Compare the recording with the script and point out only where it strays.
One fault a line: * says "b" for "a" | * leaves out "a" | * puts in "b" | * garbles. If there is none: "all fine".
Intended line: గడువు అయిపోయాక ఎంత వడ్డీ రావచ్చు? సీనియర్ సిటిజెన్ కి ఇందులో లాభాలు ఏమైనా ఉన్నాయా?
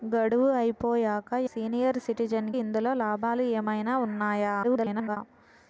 * leaves out "ఎంత వడ్డీ రావచ్చు"
* leaves out "కి"
* garbles